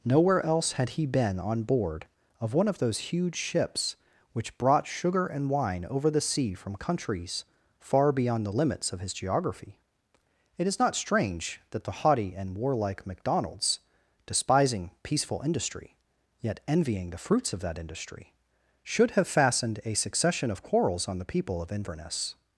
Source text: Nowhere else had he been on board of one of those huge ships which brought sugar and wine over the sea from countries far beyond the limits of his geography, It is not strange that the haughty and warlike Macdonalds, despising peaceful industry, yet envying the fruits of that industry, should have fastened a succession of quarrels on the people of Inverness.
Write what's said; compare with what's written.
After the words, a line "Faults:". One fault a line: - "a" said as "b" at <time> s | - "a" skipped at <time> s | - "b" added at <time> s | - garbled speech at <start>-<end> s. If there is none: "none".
Nowhere else had he been on board of one of those huge ships which brought sugar and wine over the sea from countries far beyond the limits of his geography, It is not strange that the haughty and warlike Macdonalds, despising peaceful industry, yet envying the fruits of that industry, should have fastened a succession of quarrels on the people of Inverness.
Faults:
none